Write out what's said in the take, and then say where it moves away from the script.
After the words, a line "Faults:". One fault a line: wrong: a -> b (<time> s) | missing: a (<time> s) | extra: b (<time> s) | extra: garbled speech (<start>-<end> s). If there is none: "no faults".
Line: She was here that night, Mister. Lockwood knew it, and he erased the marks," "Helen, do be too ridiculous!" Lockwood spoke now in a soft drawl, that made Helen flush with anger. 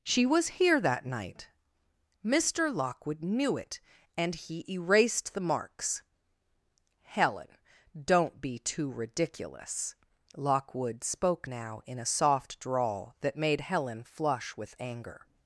She was here that night, Mister. Lockwood knew it, and he erased the marks," "Helen, don't be too ridiculous!" Lockwood spoke now in a soft drawl, that made Helen flush with anger.
Faults:
wrong: do -> don't (8.0 s)